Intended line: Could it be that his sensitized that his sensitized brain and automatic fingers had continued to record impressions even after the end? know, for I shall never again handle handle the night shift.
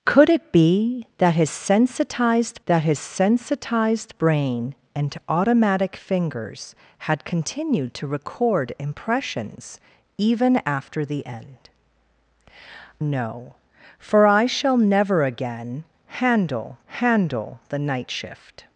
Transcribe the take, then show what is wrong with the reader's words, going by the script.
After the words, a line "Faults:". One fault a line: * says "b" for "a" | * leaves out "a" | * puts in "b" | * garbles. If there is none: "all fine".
Could it be that his sensitized that his sensitized brain and automatic fingers had continued to record impressions even after the end? know, for I shall never again handle handle the night shift.
Faults:
all fine